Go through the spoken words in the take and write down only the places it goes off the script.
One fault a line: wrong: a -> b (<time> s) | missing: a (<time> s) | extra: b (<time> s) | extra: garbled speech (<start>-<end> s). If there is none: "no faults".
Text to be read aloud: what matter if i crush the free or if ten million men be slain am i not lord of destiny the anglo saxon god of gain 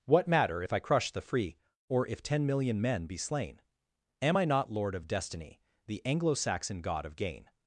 no faults